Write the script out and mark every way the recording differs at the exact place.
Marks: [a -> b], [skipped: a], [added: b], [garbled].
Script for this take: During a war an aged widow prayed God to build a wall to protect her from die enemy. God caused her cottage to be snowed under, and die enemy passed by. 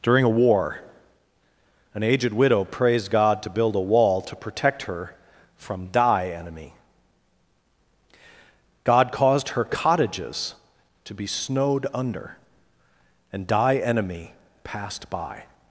During a war an aged widow [prayed -> praised] God to build a wall to protect her from die enemy. God caused her [cottage -> cottages] to be snowed under, and die enemy passed by.